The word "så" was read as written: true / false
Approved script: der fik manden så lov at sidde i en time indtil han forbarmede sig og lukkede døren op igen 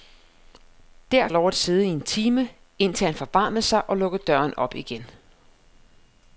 false